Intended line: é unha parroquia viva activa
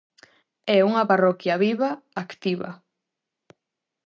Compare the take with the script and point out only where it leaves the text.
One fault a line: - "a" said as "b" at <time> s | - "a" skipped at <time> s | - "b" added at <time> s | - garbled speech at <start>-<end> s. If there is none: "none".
none